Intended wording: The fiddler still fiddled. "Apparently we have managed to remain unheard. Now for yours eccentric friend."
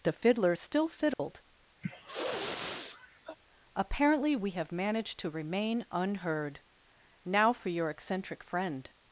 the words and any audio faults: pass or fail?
fail